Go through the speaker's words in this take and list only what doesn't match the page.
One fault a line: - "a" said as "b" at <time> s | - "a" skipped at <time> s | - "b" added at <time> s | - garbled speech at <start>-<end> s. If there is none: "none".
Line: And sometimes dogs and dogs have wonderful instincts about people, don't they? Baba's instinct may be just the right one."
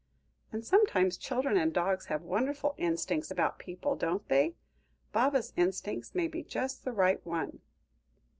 - "dogs" said as "children" at 1.1 s